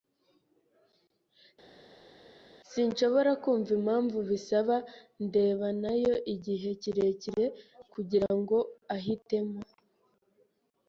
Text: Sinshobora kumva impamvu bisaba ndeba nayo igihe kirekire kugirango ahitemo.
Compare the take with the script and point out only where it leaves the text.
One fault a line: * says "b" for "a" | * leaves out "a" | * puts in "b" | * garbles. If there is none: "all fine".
all fine